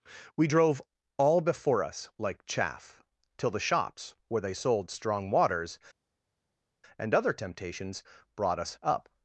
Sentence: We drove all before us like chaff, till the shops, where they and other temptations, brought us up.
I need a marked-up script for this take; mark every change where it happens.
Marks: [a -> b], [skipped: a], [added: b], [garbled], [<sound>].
We drove all before us like chaff, till the shops, where they [added: sold strong waters] and other temptations, brought us up.